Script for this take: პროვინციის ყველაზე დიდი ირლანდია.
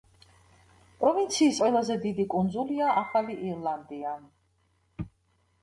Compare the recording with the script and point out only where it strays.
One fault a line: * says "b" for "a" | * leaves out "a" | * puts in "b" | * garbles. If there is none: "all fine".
* puts in "კუნძულია ახალი"